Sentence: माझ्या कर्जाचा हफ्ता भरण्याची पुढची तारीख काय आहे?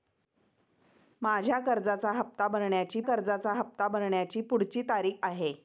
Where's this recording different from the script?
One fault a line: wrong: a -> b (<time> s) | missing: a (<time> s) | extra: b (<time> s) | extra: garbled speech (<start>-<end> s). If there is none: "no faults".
extra: कर्जाचा हफ्ता भरण्याची (3.0 s)
missing: काय (5.1 s)